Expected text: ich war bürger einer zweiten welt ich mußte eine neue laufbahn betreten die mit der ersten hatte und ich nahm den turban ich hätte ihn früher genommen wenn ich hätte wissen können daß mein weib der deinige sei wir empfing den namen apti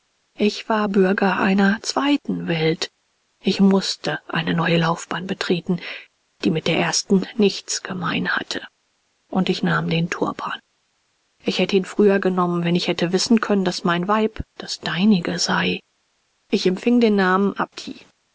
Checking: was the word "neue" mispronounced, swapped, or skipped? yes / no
no